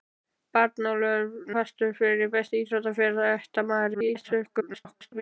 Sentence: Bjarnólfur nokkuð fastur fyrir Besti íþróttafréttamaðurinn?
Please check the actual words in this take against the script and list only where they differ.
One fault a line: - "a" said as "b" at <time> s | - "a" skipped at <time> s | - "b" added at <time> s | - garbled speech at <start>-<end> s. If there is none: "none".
- "nokkuð" skipped at 1.5 s
- garbled speech at 3.9-5.2 s